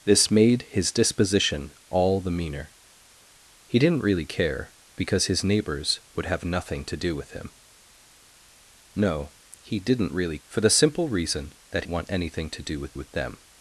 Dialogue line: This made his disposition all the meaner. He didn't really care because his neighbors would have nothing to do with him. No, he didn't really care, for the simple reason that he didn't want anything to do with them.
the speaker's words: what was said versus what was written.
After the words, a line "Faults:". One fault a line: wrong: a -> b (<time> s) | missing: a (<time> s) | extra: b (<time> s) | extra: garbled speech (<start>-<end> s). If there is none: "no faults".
This made his disposition all the meaner. He didn't really care because his neighbors would have nothing to do with him. No, he didn't really for the simple reason that want anything to do with with them.
Faults:
missing: care (10.4 s)
missing: he didn't (11.8 s)
extra: with (12.9 s)